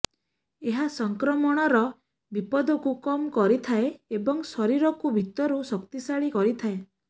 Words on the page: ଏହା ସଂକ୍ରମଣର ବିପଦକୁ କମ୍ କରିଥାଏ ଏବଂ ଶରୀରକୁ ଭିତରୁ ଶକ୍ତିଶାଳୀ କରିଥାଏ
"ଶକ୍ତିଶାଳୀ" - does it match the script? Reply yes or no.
yes